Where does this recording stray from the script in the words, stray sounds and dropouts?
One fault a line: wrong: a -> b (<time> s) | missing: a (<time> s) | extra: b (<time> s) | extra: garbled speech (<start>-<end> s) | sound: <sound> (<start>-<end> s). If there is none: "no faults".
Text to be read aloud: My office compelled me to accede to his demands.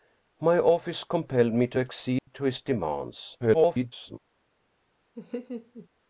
sound: dropout (2.2-2.3 s)
extra: garbled speech (3.4-4.2 s)
sound: laugh (5.2-5.9 s)